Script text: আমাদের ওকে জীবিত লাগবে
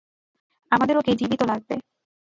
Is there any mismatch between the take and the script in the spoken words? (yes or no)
no